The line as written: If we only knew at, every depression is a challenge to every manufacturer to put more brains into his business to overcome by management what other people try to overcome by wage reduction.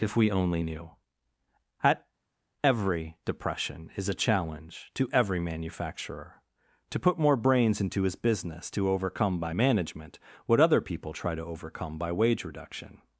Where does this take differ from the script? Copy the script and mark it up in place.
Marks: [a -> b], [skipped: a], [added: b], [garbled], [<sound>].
If we only knew at, every depression is a challenge to every manufacturer to put more brains into his business to overcome by management what other people try to overcome by wage reduction.